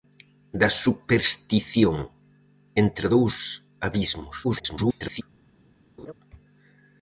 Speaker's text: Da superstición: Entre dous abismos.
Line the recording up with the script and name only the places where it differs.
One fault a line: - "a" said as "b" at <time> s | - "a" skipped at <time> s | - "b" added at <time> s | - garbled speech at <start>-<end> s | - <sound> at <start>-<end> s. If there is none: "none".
- garbled speech at 4.4-5.2 s
- laugh at 6.0-6.1 s